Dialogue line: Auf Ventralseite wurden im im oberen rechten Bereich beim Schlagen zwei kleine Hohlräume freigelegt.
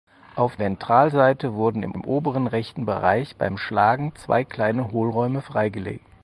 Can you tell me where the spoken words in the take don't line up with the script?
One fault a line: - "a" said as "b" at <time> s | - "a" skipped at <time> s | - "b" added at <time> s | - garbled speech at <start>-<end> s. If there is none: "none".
none